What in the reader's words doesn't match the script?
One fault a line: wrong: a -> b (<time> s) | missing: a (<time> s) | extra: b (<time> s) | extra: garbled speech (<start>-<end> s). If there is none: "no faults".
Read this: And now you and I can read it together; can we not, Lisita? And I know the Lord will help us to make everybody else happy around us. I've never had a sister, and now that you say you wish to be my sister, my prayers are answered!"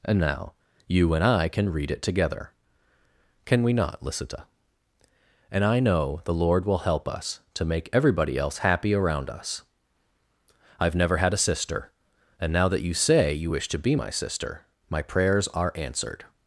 no faults